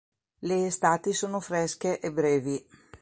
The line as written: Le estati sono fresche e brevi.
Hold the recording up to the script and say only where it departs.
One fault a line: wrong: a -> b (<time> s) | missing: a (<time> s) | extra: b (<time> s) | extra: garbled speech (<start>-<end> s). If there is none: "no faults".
no faults